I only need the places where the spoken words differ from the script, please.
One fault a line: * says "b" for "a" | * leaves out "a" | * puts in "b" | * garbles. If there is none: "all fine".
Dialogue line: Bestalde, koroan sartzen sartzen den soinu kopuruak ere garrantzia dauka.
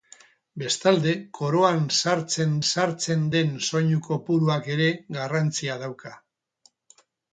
all fine